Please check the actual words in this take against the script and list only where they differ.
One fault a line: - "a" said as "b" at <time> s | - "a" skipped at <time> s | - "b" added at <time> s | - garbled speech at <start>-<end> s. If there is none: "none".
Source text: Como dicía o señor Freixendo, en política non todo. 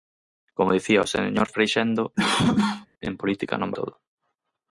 none